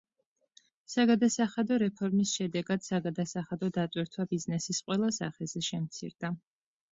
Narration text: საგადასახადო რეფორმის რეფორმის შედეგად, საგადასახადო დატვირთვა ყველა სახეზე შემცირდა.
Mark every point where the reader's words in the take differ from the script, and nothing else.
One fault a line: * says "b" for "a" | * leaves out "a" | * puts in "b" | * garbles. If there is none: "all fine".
* leaves out "რეფორმის"
* puts in "ბიზნესის"